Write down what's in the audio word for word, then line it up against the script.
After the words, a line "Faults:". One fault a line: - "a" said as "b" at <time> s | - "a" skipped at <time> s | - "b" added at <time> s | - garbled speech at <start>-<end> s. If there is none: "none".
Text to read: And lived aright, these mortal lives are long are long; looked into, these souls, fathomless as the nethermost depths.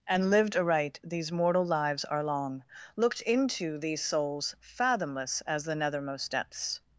And lived aright, these mortal lives are long; looked into, these souls, fathomless as the nethermost depths.
Faults:
- "are long" skipped at 2.6 s